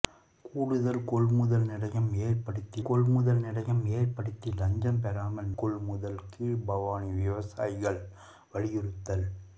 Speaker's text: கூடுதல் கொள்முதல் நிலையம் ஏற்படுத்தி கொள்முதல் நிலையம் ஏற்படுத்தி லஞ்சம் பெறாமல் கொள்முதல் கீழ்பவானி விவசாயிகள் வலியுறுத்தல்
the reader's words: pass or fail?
pass